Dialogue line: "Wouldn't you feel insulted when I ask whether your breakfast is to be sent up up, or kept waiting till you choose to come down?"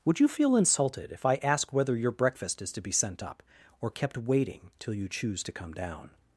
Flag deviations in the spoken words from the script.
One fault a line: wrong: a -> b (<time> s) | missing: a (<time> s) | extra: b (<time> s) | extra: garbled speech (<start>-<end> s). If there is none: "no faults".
wrong: Wouldn't -> Would (0.0 s)
wrong: when -> if (1.1 s)
missing: up (3.4 s)